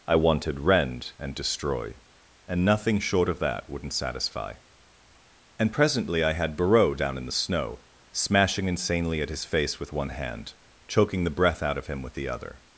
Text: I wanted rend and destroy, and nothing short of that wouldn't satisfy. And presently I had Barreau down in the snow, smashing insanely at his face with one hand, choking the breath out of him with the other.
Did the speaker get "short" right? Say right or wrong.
right